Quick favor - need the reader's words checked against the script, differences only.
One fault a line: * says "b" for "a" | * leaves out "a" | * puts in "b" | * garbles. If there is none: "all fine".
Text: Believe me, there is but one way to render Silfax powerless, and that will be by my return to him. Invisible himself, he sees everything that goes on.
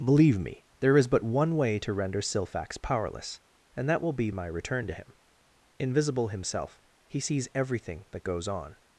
* leaves out "by"